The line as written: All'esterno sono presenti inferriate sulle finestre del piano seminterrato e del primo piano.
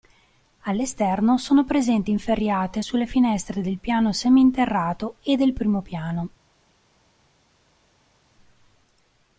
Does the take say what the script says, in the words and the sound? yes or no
yes